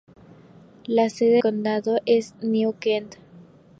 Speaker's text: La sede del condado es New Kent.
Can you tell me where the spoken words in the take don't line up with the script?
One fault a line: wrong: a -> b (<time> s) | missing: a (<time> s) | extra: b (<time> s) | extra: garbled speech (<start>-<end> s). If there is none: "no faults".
missing: del (1.4 s)